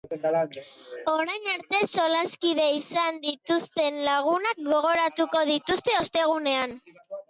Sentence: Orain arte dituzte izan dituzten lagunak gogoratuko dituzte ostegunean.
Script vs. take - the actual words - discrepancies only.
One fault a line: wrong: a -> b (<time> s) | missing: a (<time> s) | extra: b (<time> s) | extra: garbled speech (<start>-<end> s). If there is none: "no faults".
wrong: dituzte -> solaskide (2.0 s)